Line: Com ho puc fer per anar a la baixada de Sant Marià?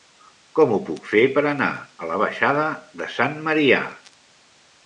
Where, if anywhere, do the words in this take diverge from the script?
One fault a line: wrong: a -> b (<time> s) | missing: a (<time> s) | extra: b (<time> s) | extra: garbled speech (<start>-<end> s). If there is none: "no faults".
no faults